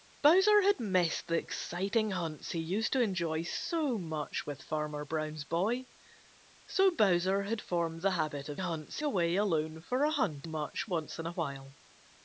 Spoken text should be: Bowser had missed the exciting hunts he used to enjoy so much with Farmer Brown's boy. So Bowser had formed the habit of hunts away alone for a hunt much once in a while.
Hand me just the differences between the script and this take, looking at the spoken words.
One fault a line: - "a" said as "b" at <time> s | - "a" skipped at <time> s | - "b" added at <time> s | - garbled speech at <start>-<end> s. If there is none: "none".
none